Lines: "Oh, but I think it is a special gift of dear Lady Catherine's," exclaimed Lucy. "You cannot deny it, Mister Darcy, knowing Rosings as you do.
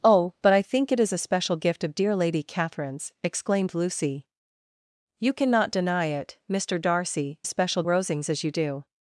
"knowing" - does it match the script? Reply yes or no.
no